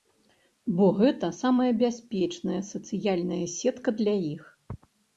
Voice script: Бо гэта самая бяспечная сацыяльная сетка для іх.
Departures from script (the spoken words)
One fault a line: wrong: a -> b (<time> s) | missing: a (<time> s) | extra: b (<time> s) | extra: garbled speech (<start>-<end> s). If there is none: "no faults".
no faults